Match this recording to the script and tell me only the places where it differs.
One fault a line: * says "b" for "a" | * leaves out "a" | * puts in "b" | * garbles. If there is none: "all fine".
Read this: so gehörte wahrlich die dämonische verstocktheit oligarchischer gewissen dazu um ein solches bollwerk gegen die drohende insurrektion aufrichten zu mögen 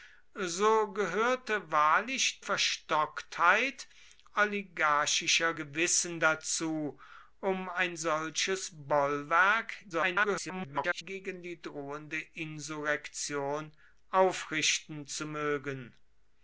* leaves out "die dämonische"
* garbles